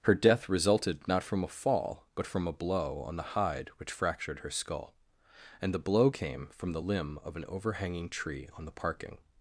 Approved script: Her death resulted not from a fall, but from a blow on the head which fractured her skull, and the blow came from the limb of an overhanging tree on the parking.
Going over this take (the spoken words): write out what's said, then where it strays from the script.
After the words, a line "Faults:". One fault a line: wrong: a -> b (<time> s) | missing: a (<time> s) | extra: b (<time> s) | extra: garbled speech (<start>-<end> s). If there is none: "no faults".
Her death resulted not from a fall, but from a blow on the hide which fractured her skull, and the blow came from the limb of an overhanging tree on the parking.
Faults:
wrong: head -> hide (3.4 s)